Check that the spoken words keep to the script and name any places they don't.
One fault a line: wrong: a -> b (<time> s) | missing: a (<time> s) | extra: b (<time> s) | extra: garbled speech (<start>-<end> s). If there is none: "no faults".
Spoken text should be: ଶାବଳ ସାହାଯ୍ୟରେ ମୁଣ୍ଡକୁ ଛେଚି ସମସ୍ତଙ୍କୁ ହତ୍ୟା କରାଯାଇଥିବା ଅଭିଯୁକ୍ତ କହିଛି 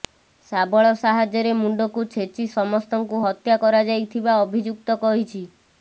no faults